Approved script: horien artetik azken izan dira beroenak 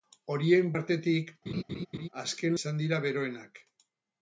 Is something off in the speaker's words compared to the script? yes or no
no